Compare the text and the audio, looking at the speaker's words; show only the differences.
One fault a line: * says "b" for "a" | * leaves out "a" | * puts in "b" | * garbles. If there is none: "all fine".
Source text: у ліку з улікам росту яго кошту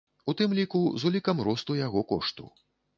* puts in "тым"